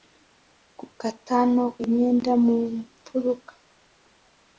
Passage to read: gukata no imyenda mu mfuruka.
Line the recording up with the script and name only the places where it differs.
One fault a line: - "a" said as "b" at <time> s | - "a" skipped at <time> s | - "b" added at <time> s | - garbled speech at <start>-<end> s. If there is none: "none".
none